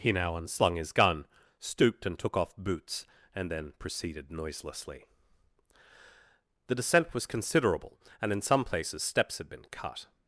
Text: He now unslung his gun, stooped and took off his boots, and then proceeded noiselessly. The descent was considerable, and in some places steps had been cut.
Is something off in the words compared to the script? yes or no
yes